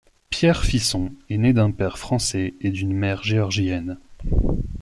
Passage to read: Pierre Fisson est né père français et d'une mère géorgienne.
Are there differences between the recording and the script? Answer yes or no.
yes